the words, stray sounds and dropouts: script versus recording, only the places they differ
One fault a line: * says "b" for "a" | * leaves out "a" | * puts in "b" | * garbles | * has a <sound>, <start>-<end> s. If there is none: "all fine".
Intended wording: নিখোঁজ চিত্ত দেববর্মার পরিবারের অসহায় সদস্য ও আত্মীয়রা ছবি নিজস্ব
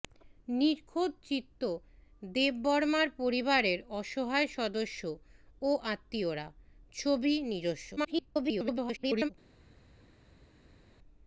* garbles